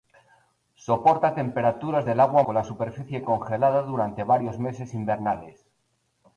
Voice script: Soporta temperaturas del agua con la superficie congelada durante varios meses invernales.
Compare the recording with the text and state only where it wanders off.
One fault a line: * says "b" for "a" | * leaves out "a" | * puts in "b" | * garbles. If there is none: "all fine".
all fine